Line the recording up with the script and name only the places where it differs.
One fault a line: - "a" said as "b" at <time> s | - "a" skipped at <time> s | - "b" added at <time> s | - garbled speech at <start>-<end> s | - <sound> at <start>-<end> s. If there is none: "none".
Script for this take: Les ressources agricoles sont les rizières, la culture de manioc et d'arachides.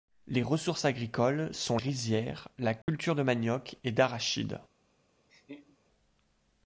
- "les" skipped at 1.8 s
- dropout at 2.8-2.9 s
- laugh at 5.3-5.8 s